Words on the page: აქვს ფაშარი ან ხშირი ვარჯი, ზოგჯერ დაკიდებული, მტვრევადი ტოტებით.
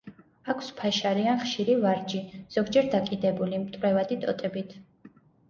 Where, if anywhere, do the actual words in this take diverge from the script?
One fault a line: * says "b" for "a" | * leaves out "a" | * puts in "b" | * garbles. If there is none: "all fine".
all fine